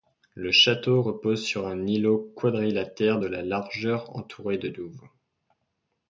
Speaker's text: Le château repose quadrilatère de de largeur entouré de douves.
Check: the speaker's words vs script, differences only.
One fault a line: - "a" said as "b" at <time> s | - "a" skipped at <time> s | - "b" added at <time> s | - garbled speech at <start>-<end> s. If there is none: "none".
- "sur un îlot" added at 1.4 s